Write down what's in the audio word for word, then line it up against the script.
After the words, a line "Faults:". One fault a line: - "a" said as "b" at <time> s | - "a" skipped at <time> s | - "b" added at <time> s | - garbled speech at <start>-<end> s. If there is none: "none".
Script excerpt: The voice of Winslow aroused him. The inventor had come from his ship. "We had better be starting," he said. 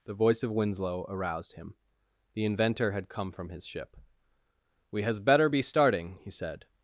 The voice of Winslow aroused him. The inventor had come from his ship. "We has better be starting," he said.
Faults:
- "had" said as "has" at 5.0 s